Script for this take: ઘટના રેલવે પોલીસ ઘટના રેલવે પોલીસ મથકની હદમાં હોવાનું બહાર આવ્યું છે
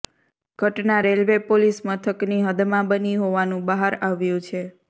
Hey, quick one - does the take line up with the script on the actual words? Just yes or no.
no